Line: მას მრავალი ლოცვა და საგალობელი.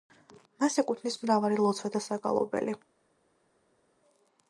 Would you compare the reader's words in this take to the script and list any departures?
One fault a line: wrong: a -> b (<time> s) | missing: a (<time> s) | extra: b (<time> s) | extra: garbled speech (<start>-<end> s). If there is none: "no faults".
extra: ეკუთვნის (0.8 s)